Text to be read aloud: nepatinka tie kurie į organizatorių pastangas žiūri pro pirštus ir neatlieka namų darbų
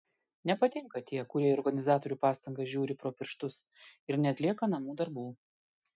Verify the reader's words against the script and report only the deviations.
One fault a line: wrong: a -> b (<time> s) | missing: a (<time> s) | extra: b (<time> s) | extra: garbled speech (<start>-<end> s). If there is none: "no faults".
no faults